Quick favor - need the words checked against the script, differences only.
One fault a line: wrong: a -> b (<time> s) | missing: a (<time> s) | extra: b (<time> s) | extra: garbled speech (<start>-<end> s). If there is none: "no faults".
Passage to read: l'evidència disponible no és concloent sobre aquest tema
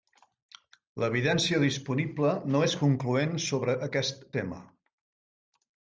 no faults